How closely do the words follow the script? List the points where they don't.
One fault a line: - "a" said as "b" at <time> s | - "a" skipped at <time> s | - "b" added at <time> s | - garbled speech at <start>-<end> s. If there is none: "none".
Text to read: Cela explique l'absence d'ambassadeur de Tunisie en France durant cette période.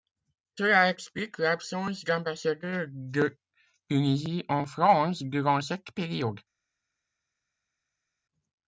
none